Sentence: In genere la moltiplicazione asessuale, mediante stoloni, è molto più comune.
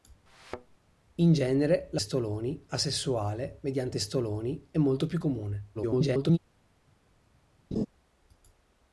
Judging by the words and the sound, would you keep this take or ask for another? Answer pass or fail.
fail